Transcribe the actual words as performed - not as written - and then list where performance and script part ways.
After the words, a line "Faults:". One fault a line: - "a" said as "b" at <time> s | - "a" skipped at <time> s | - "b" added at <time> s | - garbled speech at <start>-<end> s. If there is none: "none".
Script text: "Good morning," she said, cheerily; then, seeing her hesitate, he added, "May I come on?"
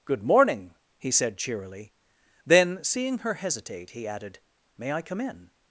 "Good morning," he said, cheerily; then, seeing her hesitate, he added, "May I come in?"
Faults:
- "she" said as "he" at 1.0 s
- "on" said as "in" at 5.2 s